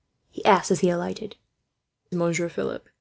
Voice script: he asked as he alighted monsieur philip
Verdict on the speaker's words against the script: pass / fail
pass